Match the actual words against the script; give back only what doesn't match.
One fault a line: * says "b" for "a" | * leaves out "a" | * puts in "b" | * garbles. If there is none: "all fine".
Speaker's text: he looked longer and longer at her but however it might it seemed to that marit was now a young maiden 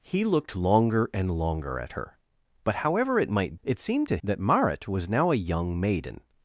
all fine